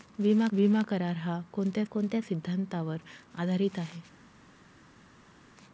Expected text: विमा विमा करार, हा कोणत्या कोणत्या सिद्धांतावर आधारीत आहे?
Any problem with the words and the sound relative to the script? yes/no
no